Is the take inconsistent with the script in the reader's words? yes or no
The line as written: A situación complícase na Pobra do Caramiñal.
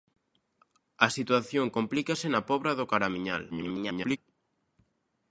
yes